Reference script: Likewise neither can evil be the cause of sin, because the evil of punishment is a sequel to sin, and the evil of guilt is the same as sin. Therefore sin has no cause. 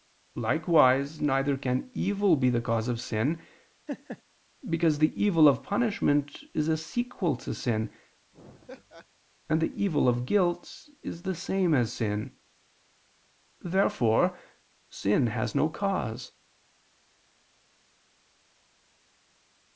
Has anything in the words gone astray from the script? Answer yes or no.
no